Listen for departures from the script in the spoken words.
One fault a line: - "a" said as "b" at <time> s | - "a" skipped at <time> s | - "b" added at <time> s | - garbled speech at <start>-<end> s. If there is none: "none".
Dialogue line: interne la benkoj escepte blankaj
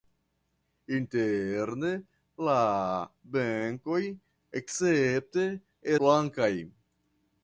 none